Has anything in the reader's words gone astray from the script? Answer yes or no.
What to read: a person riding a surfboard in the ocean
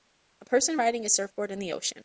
no